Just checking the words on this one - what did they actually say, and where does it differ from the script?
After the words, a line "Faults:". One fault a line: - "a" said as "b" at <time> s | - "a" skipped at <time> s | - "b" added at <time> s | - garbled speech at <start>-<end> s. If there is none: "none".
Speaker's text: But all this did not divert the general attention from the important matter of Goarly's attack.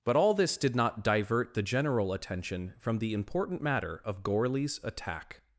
But all this did not divert the general attention from the important matter of Goarly's attack.
Faults:
none